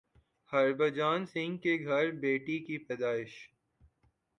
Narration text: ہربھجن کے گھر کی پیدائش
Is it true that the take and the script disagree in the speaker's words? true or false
true